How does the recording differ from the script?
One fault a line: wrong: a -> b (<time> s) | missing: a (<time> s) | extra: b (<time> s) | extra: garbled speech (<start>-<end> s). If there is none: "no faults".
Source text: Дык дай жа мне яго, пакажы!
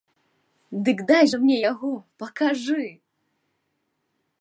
no faults